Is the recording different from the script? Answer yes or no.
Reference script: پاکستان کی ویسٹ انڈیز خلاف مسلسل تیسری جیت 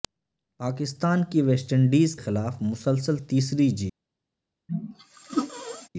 no